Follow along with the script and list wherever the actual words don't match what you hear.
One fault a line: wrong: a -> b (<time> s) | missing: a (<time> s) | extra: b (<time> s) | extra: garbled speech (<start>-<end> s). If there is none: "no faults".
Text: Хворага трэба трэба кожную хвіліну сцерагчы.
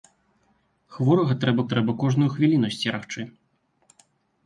no faults